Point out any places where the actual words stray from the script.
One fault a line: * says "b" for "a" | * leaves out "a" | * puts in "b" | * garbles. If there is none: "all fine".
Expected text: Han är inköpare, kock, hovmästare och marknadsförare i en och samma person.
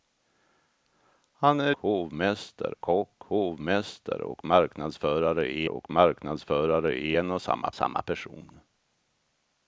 * says "hovmästare" for "inköpare"
* puts in "och marknadsförare i"
* puts in "samma"